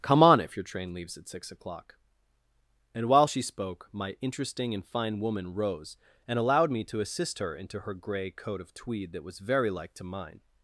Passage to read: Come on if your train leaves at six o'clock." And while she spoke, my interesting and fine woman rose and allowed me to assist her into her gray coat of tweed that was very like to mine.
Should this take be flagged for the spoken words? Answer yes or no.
no